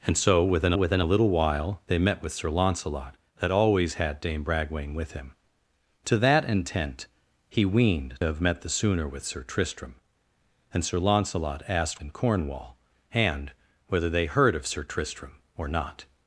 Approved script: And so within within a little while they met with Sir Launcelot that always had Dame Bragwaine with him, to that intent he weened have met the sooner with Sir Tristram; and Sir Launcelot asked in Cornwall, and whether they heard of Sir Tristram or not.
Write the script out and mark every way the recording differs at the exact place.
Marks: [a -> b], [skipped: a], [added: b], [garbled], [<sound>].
And so within within a little while they met with Sir Launcelot that always had Dame Bragwaine with him, to that intent he weened have met the sooner with Sir Tristram; and Sir Launcelot asked in Cornwall, and whether they heard of Sir Tristram or not.